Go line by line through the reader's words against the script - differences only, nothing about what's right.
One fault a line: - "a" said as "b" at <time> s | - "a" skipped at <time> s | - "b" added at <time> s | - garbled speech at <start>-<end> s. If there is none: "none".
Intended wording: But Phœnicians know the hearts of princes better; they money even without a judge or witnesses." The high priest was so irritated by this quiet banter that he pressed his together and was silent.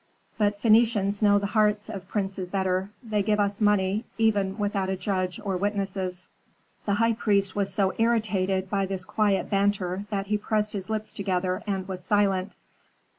- "give us" added at 3.2 s
- "lips" added at 10.9 s